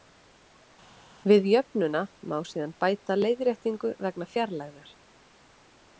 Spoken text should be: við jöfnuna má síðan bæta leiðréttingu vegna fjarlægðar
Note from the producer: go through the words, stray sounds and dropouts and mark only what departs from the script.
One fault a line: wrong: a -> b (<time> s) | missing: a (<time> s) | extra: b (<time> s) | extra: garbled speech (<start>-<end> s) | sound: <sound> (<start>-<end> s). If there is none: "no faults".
no faults